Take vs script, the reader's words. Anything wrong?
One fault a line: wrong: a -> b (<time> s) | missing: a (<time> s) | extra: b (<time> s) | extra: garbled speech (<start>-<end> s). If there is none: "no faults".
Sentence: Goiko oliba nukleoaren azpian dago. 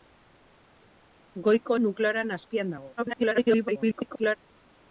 missing: oliba (1.8 s)
extra: garbled speech (3.0-4.4 s)